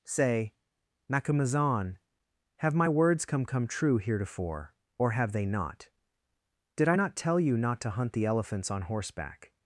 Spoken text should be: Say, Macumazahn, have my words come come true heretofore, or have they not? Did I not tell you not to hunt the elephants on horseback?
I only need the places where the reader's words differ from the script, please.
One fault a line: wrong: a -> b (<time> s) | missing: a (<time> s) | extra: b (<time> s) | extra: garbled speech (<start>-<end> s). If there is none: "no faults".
no faults